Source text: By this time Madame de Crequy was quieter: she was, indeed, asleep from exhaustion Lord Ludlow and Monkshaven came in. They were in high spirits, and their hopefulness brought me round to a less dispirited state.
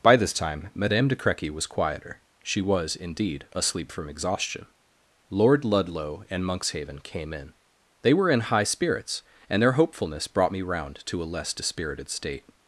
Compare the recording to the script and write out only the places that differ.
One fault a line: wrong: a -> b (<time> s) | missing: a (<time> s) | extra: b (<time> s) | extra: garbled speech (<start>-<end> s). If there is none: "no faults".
no faults